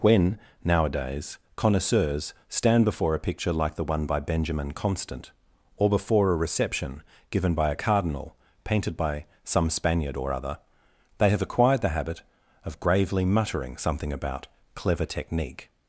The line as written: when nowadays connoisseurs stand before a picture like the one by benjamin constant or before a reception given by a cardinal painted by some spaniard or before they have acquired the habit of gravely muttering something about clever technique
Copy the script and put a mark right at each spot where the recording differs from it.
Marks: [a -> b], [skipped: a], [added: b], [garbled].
when nowadays connoisseurs stand before a picture like the one by benjamin constant or before a reception given by a cardinal painted by some spaniard or [before -> other] they have acquired the habit of gravely muttering something about clever technique